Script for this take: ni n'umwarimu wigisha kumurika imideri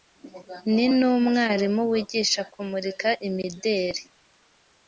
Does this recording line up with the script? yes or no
yes